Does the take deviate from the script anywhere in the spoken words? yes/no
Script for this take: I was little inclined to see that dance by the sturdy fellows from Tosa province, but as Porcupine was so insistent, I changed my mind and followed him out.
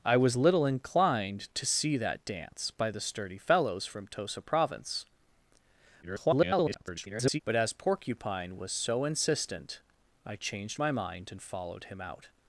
yes